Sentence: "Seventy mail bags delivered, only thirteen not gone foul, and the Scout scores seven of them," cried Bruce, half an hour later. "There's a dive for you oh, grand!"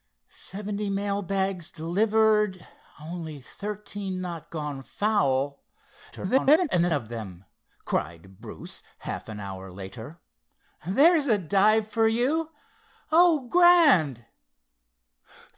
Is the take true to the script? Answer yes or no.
no